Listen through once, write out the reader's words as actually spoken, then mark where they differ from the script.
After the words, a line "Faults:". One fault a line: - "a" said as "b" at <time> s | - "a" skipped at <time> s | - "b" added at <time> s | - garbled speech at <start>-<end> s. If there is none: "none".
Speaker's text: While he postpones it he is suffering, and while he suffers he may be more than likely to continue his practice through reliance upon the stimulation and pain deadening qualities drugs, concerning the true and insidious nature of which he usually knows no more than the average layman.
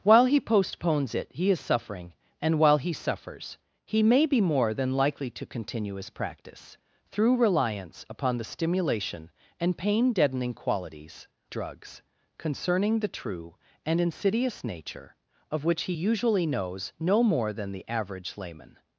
While he postpones it he is suffering, and while he suffers he may be more than likely to continue his practice through reliance upon the stimulation and pain deadening qualities drugs, concerning the true and insidious nature of which he usually knows no more than the average layman.
Faults:
none